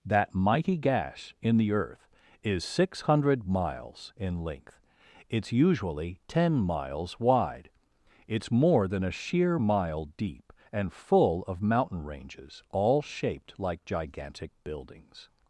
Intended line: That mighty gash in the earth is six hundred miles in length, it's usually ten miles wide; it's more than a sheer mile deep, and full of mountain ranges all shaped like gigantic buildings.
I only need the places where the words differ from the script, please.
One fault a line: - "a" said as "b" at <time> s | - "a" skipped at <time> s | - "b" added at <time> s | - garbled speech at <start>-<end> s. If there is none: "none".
none